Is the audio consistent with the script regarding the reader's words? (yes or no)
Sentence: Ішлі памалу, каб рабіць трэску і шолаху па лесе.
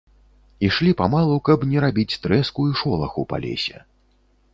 no